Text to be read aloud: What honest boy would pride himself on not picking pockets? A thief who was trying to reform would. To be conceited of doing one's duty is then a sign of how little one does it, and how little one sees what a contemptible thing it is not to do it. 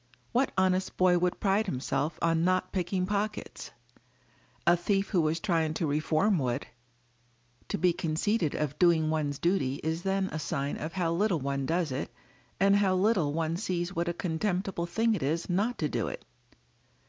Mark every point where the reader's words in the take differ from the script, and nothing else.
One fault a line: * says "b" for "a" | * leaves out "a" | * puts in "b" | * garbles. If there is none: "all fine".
all fine